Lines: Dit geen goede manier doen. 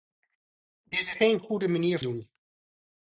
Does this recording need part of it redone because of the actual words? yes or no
no